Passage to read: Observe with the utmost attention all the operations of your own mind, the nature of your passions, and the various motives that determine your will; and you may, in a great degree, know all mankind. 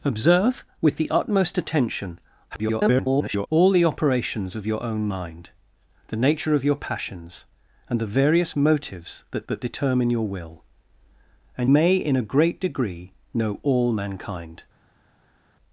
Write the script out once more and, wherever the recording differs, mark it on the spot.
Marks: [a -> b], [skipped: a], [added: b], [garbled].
Observe with the utmost attention [garbled] all the operations of your own mind, the nature of your passions, and the various motives that [added: that] determine your will; and [skipped: you] may, in a great degree, know all mankind.